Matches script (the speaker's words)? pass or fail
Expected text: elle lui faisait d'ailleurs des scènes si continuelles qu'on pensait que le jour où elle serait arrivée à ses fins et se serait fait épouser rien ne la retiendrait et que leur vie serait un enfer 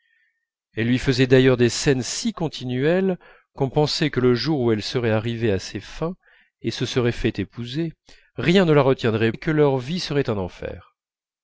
pass